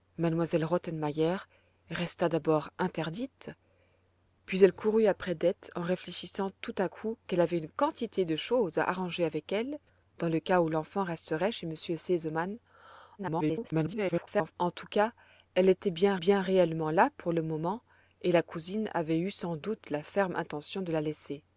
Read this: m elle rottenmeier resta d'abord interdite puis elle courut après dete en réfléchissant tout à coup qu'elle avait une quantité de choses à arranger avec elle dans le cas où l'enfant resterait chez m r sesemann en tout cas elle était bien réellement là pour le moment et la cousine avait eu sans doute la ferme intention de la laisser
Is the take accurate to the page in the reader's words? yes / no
no